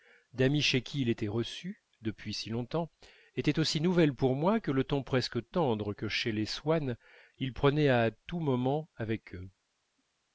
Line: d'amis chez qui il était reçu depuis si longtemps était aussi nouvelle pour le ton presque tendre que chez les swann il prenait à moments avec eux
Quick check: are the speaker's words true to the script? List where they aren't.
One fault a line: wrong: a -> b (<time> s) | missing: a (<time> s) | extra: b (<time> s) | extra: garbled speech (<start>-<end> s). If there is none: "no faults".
extra: moi que (4.3 s)
extra: tous (8.1 s)